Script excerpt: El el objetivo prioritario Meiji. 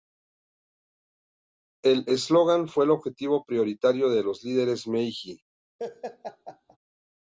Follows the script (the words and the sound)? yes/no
no